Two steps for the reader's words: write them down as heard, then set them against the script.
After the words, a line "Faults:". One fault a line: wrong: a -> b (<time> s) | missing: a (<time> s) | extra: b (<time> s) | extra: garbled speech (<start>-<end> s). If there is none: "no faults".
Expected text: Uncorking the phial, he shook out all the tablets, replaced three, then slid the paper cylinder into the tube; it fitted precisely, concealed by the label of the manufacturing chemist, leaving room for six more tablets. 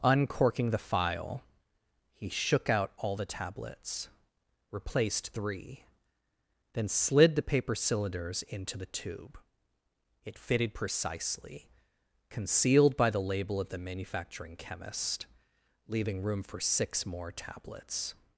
Uncorking the phial, he shook out all the tablets, replaced three, then slid the paper cylinders into the tube; it fitted precisely, concealed by the label of the manufacturing chemist, leaving room for six more tablets.
Faults:
wrong: cylinder -> cylinders (7.8 s)